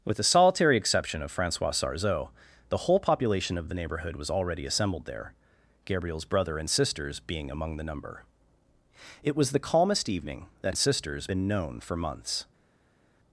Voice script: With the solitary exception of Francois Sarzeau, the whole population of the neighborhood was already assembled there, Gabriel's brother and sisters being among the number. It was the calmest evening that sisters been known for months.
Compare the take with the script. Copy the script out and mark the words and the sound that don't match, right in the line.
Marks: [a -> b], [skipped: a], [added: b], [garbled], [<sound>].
With the solitary exception of Francois Sarzeau, the whole population of the neighborhood was already assembled there, Gabriel's brother and sisters being among the number. It was the calmest evening that sisters been known for months.